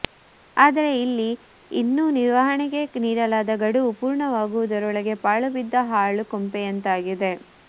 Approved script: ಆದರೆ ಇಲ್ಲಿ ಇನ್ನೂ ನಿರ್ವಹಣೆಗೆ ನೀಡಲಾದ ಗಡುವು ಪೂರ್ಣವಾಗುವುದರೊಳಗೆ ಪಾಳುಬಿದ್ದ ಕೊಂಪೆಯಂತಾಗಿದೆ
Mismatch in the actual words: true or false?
true